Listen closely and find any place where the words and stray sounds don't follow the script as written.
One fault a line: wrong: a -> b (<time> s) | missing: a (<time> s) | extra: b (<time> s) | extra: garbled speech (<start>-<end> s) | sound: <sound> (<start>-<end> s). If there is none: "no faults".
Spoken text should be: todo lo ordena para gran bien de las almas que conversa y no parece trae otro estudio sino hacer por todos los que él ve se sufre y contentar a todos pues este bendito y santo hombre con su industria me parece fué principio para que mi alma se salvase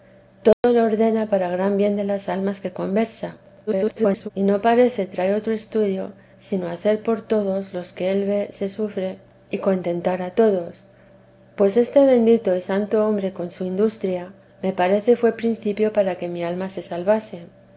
sound: dropout (0.5-0.6 s)
extra: garbled speech (3.7-4.3 s)